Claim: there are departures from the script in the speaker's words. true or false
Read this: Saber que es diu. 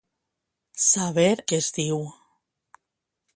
false